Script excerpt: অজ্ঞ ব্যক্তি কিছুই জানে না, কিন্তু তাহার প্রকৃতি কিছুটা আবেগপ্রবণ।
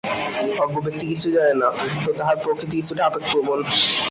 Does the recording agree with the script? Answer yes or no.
yes